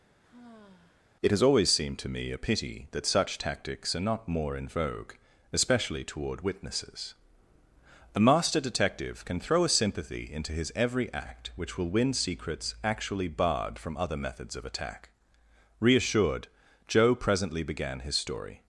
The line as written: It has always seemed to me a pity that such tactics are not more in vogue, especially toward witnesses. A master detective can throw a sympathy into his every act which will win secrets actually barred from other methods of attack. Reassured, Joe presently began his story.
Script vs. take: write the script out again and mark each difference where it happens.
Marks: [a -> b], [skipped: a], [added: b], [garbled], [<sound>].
[sigh] It has always seemed to me a pity that such tactics are not more in vogue, especially toward witnesses. A master detective can throw a sympathy into his every act which will win secrets actually barred from other methods of attack. Reassured, Joe presently began his story.